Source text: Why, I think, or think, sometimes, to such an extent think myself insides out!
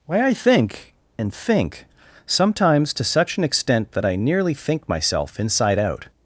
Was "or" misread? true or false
true